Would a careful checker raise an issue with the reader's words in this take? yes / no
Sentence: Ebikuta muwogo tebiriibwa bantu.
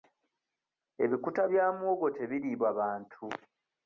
yes